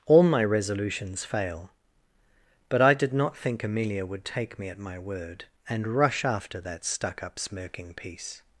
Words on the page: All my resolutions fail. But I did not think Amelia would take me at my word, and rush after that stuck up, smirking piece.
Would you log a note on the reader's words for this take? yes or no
no